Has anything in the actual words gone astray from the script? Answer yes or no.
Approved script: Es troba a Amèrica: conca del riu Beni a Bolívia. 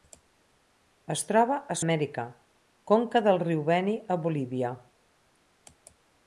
no